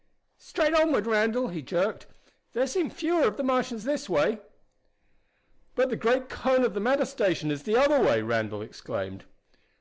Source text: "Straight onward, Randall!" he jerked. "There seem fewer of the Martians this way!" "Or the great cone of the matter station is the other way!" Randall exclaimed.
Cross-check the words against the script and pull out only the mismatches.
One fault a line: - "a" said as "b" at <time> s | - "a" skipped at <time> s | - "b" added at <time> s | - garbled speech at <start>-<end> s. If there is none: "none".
- "Or" said as "But" at 5.8 s